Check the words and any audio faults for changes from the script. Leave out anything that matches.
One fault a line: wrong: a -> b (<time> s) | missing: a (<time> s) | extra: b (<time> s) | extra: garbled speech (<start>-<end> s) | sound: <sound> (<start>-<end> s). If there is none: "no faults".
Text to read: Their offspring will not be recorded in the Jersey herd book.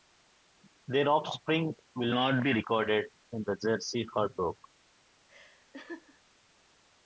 sound: laugh (5.3-6.2 s)